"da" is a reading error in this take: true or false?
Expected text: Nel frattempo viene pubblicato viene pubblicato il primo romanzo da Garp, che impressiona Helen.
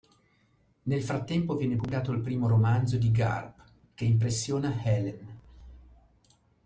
true